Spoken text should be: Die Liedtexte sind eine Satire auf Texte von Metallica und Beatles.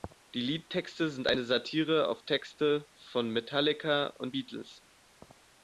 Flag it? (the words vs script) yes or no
no